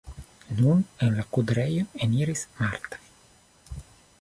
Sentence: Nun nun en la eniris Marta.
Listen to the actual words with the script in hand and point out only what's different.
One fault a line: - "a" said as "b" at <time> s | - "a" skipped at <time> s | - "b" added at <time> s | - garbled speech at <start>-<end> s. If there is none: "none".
- "nun" skipped at 0.8 s
- "kudrejon" added at 1.4 s